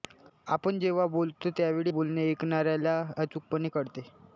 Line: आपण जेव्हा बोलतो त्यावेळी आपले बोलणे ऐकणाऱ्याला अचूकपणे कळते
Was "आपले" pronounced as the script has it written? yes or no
no